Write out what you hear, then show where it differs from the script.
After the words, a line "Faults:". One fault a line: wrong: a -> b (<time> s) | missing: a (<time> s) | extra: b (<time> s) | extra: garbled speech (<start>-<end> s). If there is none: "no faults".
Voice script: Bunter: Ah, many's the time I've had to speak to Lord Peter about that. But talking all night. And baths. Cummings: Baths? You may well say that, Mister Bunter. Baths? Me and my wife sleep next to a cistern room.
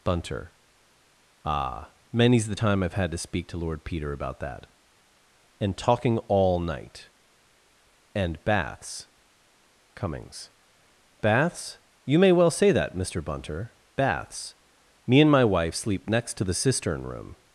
Bunter: Ah, many's the time I've had to speak to Lord Peter about that. And talking all night. And baths. Cummings: Baths? You may well say that, Mister Bunter. Baths? Me and my wife sleep next to the cistern room.
Faults:
wrong: But -> And (5.6 s)
wrong: a -> the (16.4 s)